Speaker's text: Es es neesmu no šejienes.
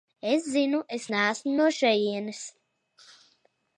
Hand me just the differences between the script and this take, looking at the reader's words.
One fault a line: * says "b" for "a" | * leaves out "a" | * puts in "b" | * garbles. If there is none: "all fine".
* puts in "zinu"